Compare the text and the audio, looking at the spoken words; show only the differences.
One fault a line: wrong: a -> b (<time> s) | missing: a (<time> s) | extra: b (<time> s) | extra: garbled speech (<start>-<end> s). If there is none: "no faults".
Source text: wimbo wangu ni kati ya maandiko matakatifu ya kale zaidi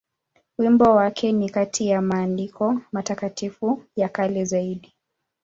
wrong: wangu -> wake (0.9 s)